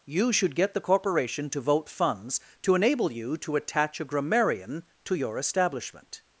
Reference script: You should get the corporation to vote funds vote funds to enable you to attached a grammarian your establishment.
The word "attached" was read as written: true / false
false